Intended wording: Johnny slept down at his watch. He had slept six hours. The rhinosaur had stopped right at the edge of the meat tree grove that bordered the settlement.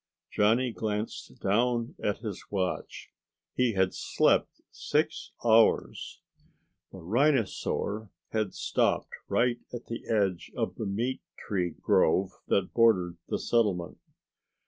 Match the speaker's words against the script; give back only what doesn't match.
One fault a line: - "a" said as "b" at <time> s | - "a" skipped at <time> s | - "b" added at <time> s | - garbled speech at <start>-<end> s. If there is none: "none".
- "slept" said as "glanced" at 0.7 s